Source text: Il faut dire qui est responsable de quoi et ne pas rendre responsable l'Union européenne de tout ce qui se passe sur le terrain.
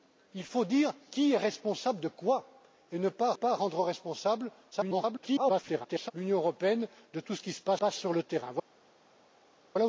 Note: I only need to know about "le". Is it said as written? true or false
true